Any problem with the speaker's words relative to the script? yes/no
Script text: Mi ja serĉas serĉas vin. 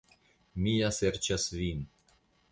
yes